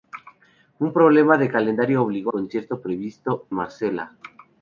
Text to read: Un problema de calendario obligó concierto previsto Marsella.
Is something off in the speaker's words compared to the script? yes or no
no